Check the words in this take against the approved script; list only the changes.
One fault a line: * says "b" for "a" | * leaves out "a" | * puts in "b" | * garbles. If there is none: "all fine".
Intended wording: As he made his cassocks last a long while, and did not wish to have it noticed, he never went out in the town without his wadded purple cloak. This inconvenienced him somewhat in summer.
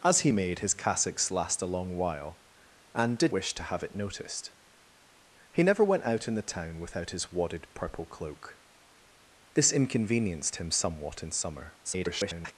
* leaves out "not"
* garbles